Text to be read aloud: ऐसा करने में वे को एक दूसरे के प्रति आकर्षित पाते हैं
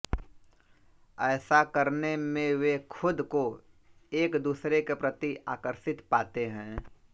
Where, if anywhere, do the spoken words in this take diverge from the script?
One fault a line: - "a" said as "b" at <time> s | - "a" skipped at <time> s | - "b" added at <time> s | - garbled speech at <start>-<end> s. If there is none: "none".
- "खुद" added at 2.9 s